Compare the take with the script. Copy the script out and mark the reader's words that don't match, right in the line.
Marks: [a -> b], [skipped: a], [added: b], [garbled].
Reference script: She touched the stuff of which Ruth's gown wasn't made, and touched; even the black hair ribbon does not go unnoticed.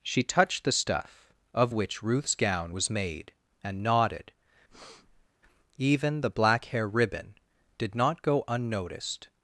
She touched the stuff of which Ruth's gown [wasn't -> was] made, and [touched; -> nodded] even the black hair ribbon [does -> did] not go unnoticed.